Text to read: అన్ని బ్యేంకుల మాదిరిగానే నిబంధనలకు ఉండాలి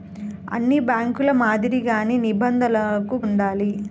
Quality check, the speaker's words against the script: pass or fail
pass